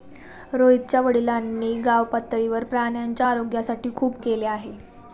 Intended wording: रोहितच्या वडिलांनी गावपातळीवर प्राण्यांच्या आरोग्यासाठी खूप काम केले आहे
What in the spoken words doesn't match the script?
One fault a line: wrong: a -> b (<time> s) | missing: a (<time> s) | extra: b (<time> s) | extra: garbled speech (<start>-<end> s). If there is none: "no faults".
missing: काम (4.2 s)